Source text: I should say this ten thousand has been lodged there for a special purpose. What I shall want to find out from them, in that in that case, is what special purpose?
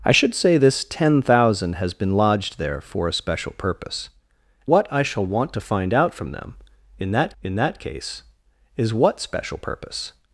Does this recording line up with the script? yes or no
yes